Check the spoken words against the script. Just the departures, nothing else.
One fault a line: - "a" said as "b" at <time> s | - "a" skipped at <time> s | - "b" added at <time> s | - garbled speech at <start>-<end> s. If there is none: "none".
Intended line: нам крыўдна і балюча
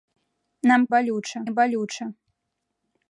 - "крыўдна" said as "балюча" at 1.0 s